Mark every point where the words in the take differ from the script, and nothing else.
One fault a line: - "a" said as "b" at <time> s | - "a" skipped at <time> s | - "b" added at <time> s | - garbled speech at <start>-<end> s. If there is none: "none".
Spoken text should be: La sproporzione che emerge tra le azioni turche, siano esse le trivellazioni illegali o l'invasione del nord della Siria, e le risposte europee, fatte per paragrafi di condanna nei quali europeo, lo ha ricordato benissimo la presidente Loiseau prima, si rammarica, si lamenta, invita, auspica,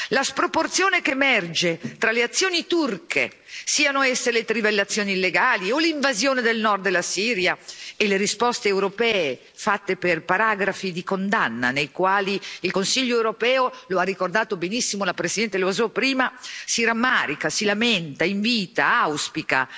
- "il Consiglio" added at 12.6 s